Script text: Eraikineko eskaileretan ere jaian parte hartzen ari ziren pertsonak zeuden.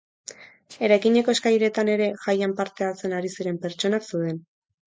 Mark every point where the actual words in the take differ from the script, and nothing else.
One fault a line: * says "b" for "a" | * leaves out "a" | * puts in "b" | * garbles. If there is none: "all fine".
all fine